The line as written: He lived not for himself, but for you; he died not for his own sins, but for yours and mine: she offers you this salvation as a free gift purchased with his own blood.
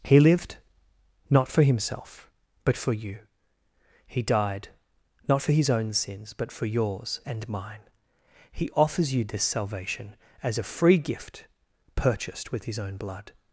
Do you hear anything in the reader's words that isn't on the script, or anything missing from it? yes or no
yes